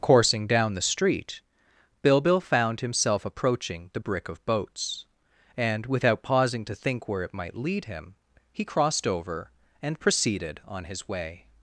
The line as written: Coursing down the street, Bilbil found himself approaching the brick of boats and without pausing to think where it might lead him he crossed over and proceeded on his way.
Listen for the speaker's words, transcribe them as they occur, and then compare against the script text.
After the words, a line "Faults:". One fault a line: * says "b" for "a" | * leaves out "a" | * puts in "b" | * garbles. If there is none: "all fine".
Coursing down the street, Bilbil found himself approaching the brick of boats and without pausing to think where it might lead him he crossed over and proceeded on his way.
Faults:
all fine